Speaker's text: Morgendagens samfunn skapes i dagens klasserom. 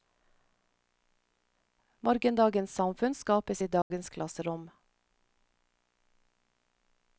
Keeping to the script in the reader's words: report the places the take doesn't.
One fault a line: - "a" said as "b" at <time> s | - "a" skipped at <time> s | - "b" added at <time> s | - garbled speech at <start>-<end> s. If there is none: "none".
none